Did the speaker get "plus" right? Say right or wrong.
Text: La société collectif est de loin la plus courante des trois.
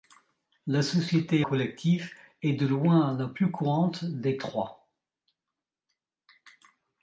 right